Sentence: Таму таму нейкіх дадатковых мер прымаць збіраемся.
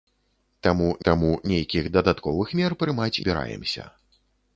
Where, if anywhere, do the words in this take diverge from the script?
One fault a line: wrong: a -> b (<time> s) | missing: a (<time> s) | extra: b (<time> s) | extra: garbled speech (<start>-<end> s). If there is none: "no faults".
no faults